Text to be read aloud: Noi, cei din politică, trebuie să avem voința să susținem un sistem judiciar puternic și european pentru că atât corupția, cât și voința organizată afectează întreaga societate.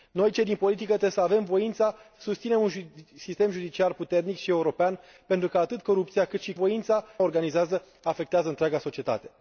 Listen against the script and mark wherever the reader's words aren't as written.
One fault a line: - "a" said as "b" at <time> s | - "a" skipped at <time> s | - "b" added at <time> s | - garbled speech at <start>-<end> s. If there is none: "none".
none